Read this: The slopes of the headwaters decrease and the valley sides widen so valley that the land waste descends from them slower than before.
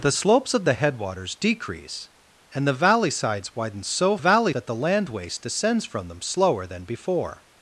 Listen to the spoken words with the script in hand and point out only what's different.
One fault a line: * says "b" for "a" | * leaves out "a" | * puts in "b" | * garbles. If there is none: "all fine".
all fine